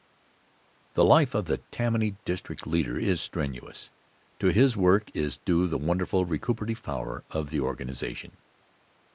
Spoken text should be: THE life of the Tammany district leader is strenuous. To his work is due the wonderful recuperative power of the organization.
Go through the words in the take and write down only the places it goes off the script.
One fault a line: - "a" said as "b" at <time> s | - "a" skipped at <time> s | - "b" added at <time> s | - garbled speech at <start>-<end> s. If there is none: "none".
none